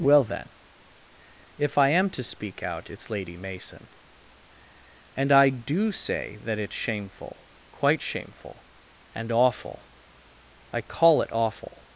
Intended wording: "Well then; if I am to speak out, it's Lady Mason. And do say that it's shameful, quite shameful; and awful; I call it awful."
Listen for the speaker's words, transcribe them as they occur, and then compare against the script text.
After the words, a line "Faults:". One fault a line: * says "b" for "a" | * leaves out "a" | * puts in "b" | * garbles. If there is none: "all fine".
"Well then; if I am to speak out, it's Lady Mason. And I do say that it's shameful, quite shameful; and awful; I call it awful."
Faults:
* puts in "I"